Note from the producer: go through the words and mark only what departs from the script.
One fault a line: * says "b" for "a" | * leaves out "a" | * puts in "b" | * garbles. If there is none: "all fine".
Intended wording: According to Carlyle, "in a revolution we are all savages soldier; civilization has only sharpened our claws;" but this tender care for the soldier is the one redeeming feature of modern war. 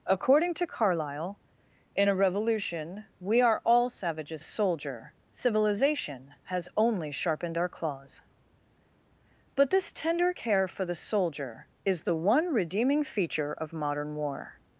all fine